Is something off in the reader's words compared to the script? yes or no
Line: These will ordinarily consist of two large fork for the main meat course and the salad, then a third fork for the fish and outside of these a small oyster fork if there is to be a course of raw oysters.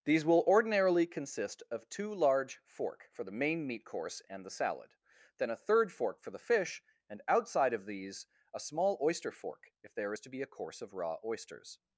no